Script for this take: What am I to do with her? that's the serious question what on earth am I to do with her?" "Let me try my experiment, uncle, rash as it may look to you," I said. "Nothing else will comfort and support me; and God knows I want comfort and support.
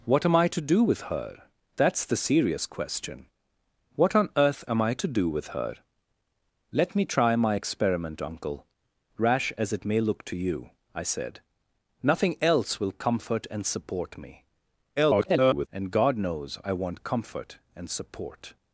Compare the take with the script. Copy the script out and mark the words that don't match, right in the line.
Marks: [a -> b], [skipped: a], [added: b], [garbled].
What am I to do with her? that's the serious question what on earth am I to do with her?" "Let me try my experiment, uncle, rash as it may look to you," I said. "Nothing else will comfort and support me; [garbled] and God knows I want comfort and support.